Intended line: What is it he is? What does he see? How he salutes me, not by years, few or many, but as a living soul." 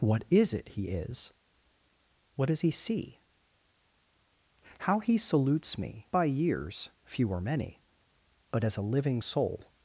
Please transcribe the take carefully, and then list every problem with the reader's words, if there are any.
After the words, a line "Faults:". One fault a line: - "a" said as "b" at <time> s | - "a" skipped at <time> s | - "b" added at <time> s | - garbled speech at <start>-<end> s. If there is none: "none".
What is it he is? What does he see? How he salutes me, by years, few or many, but as a living soul."
Faults:
- "not" skipped at 6.1 s